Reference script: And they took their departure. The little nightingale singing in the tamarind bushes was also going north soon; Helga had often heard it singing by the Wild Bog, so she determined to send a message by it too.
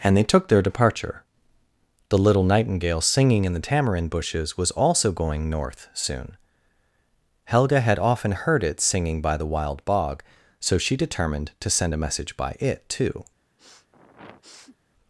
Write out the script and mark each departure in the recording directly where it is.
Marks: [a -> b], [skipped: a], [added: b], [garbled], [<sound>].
And they took their departure. The little nightingale singing in the tamarind bushes was also going north soon; Helga had often heard it singing by the Wild Bog, so she determined to send a message by it too. [sniff]